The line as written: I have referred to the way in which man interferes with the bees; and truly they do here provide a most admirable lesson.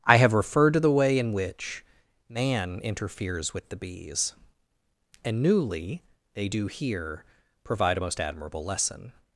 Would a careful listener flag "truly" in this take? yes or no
yes